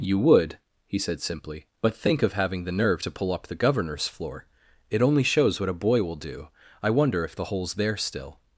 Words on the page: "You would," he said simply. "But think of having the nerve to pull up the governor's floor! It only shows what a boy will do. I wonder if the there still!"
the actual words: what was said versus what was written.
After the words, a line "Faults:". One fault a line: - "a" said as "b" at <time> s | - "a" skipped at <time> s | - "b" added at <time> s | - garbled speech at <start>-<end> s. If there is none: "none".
"You would," he said simply. "But think of having the nerve to pull up the governor's floor! It only shows what a boy will do. I wonder if the hole's there still!"
Faults:
- "hole's" added at 7.4 s